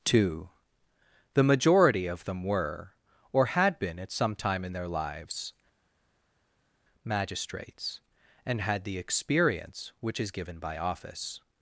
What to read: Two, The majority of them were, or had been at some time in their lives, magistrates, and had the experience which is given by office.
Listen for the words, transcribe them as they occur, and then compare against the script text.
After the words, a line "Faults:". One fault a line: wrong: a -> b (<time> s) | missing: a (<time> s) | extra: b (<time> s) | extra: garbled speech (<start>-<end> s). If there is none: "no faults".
Two, The majority of them were, or had been at some time in their lives, magistrates, and had the experience which is given by office.
Faults:
no faults